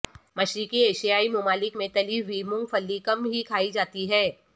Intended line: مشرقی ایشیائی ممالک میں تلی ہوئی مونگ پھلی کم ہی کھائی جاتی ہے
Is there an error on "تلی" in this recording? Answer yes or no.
no